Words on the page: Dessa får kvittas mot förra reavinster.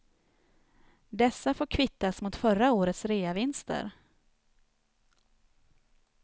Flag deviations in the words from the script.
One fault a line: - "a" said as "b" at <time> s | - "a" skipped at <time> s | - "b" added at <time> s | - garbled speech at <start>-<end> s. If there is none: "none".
- "årets" added at 2.7 s